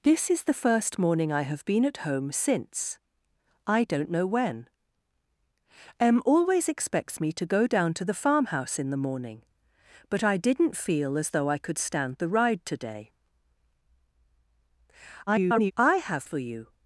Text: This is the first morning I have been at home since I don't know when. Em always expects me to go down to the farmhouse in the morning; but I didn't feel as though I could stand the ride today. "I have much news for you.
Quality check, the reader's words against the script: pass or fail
fail